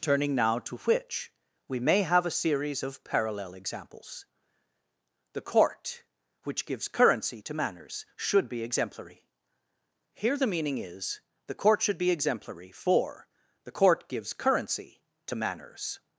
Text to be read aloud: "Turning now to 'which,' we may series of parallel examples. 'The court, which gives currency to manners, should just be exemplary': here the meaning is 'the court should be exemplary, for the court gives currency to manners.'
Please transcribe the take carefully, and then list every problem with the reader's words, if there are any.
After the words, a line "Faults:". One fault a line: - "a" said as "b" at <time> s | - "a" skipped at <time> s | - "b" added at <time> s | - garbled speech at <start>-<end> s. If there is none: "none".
"Turning now to 'which,' we may have a series of parallel examples. 'The court, which gives currency to manners, should be exemplary': here the meaning is 'the court should be exemplary, for the court gives currency to manners.'
Faults:
- "have a" added at 2.0 s
- "just" skipped at 8.5 s